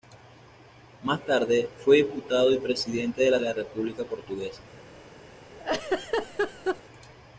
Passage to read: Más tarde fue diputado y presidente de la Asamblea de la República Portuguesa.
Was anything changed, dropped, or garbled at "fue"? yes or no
no